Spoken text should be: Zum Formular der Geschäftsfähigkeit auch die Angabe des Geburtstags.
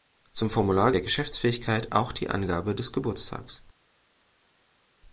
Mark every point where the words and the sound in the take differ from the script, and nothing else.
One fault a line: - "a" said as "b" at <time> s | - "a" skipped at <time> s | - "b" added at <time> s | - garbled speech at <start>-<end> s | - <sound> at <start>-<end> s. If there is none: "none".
none